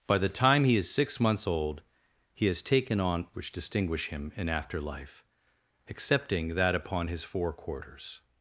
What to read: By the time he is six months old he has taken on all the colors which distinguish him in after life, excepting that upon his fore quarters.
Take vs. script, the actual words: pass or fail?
fail